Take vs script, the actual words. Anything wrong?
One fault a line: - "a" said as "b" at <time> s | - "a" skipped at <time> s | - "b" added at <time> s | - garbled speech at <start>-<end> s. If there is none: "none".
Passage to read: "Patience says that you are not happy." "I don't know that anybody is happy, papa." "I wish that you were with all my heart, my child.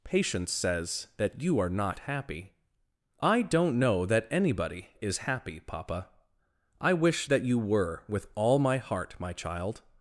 none